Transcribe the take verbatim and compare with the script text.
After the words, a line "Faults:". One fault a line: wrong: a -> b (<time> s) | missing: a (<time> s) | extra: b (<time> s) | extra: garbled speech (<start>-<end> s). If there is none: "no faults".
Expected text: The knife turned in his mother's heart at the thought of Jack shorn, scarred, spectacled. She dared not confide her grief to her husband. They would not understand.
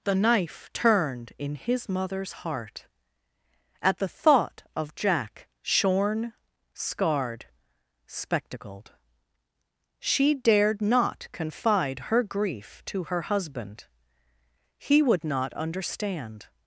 The knife turned in his mother's heart at the thought of Jack shorn, scarred, spectacled. She dared not confide her grief to her husband. He would not understand.
Faults:
wrong: They -> He (14.8 s)